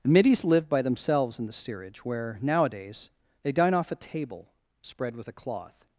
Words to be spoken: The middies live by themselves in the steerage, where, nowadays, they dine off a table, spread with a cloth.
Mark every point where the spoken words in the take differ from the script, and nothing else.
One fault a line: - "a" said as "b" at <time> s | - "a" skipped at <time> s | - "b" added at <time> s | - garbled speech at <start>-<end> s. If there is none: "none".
none